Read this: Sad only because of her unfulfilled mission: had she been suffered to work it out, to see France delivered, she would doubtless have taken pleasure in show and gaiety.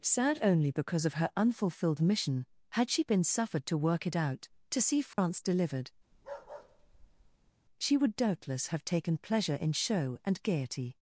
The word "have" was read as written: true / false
true